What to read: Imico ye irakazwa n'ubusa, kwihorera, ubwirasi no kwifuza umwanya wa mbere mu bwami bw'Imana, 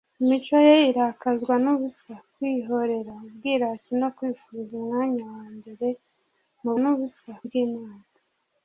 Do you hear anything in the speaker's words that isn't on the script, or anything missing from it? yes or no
yes